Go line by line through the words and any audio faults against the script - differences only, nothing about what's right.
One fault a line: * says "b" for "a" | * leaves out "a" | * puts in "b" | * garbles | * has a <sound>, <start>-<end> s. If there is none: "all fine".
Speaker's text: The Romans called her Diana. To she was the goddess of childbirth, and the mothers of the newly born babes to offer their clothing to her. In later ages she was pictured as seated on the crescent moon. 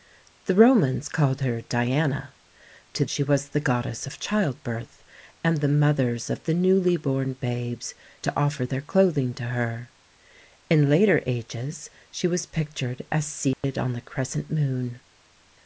* has a dropout, 13.5-13.6 s